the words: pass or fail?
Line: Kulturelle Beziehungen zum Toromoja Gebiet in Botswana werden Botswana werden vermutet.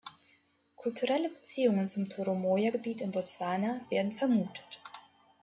fail